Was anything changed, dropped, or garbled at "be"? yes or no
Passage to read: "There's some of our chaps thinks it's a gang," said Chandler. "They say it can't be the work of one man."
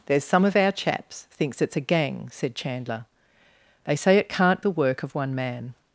yes